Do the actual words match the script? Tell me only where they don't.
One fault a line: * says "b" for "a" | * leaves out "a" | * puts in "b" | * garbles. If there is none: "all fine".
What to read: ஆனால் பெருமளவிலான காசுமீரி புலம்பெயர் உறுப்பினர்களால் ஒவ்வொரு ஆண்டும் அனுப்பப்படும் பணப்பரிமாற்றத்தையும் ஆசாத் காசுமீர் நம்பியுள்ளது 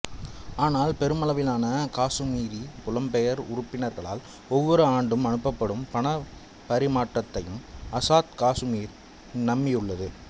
all fine